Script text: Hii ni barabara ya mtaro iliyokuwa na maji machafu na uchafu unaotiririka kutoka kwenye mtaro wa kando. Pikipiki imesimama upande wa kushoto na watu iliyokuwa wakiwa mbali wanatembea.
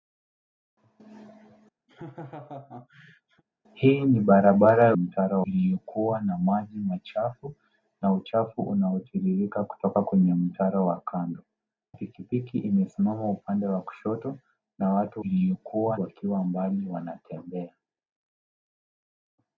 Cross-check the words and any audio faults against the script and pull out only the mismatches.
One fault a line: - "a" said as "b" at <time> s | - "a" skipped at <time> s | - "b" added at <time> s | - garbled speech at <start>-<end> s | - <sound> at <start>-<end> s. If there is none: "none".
- laugh at 1.9-3.4 s